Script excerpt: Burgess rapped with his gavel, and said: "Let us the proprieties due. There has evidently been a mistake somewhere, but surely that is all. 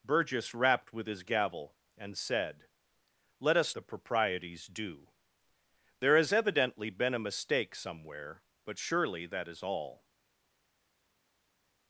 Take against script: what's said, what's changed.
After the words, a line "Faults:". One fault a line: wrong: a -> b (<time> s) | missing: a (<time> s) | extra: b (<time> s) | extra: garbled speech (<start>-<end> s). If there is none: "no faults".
Burgess rapped with his gavel, and said: "Let us the proprieties due. There has evidently been a mistake somewhere, but surely that is all.
Faults:
no faults